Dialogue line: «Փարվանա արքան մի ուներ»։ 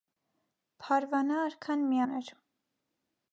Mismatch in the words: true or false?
false